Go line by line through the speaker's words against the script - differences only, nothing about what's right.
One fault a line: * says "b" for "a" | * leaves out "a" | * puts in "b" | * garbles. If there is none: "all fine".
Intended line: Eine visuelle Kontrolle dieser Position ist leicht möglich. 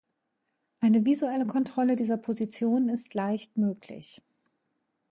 all fine